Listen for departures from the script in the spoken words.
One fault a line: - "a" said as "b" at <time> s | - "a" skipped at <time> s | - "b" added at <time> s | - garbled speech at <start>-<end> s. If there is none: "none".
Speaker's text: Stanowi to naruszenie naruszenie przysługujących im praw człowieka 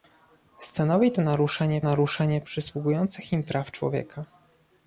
none